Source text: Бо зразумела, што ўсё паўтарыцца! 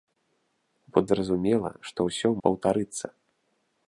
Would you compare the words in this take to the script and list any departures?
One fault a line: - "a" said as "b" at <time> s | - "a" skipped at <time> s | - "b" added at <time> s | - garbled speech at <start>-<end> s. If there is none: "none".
none